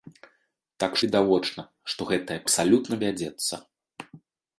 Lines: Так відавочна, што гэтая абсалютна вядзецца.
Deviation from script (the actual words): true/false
false